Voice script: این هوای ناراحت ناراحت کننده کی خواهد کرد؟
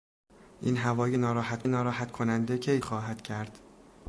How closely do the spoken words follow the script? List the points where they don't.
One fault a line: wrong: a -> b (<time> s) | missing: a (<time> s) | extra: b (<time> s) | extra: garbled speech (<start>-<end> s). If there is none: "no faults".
no faults